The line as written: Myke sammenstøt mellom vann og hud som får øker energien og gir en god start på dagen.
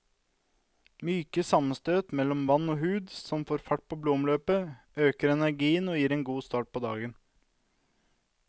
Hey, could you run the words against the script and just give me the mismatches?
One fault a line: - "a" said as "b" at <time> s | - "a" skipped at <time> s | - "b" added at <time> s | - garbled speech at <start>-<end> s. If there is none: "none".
- "fart på blodomløpet" added at 3.7 s